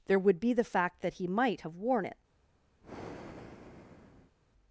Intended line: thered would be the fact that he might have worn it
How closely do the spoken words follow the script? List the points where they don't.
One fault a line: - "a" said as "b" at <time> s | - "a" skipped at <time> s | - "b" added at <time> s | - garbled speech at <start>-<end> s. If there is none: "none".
- "thered" said as "there" at 0.1 s